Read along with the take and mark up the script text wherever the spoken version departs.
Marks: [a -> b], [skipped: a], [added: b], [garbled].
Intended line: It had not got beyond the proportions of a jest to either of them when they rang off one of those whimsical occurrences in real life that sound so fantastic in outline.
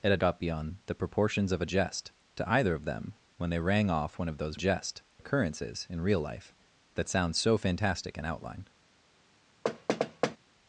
It had [skipped: not] got beyond the proportions of a jest to either of them when they rang off one of those [whimsical -> jest] occurrences in real life that sound so fantastic in outline.